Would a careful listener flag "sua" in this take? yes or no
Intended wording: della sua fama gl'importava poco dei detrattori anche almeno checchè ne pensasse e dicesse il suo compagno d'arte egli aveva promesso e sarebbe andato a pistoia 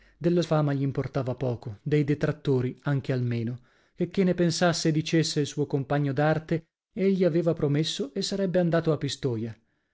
yes